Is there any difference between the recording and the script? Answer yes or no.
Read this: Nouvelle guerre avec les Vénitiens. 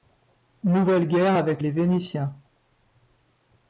no